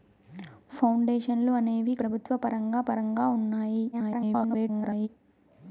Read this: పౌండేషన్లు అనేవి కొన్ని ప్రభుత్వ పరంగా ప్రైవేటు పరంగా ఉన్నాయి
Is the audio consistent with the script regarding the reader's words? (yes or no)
no